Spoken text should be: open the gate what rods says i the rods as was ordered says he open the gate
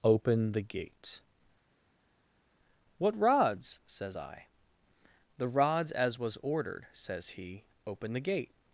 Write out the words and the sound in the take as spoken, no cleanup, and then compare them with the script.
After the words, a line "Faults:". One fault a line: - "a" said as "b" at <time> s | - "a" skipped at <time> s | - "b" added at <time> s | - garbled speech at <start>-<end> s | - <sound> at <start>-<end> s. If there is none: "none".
open the gate what rods says i the rods as was ordered says he open the gate
Faults:
none